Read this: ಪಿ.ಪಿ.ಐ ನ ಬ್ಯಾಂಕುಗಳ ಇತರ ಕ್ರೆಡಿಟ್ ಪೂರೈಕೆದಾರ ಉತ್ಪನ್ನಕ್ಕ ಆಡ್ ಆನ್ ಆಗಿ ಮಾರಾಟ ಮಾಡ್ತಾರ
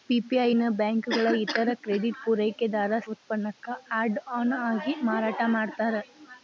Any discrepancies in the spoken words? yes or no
no